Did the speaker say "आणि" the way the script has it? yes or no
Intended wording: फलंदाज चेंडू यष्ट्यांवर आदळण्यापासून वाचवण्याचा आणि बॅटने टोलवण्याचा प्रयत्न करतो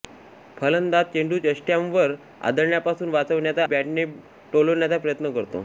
no